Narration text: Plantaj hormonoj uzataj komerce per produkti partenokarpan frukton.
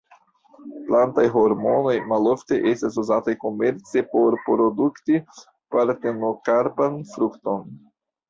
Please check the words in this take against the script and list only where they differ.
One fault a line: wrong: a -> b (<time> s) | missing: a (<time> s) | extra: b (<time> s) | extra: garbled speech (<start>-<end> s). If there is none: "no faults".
extra: malofte estas (2.1 s)
wrong: per -> por (4.1 s)